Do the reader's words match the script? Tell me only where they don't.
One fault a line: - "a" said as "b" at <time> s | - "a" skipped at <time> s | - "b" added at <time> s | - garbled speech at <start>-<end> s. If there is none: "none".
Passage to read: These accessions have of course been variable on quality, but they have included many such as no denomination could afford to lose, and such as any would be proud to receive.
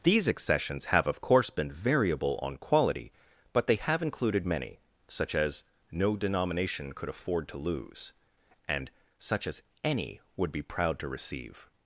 none